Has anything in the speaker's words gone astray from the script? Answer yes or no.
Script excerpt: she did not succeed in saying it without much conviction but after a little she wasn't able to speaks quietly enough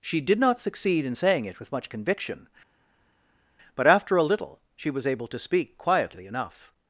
yes